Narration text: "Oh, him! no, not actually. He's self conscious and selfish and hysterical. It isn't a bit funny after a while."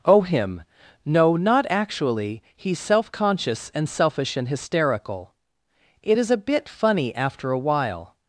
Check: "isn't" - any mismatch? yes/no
yes